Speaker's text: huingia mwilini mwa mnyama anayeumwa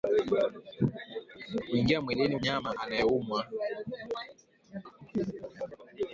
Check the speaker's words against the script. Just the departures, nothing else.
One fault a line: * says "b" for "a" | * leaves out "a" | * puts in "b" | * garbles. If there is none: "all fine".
* leaves out "mwa"